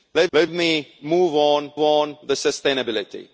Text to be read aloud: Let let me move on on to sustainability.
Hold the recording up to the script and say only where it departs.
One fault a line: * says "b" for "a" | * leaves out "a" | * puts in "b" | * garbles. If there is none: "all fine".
all fine